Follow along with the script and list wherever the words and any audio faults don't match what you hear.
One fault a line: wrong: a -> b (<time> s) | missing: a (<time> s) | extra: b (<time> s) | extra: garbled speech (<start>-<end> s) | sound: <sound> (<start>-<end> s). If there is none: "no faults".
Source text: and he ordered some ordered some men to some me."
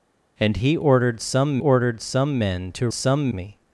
no faults